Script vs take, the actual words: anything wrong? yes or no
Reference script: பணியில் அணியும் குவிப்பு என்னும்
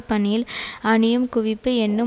no